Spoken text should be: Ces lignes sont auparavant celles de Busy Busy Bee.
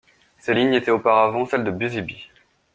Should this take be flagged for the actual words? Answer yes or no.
yes